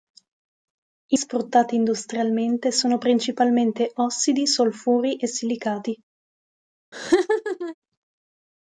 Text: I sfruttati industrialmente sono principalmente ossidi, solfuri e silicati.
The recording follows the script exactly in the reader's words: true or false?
true